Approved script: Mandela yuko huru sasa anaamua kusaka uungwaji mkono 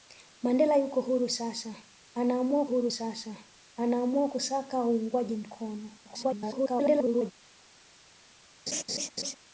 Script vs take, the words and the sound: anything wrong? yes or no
yes